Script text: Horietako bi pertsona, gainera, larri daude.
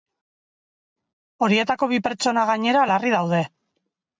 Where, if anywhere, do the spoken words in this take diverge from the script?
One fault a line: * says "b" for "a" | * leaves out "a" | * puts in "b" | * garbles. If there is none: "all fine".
all fine